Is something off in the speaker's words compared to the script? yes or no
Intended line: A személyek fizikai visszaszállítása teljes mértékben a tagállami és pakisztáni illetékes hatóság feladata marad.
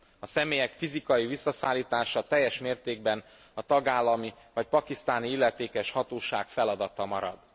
yes